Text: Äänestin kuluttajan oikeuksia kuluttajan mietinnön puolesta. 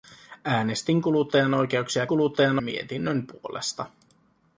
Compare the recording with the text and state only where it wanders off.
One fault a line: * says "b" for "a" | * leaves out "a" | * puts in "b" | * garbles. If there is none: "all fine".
all fine